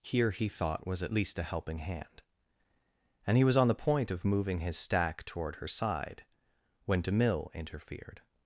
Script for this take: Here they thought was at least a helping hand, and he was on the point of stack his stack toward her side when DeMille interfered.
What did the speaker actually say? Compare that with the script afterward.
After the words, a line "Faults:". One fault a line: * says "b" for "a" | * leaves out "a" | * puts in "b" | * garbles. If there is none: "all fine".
Here he thought was at least a helping hand, and he was on the point of moving his stack toward her side when DeMille interfered.
Faults:
* says "he" for "they"
* says "moving" for "stack"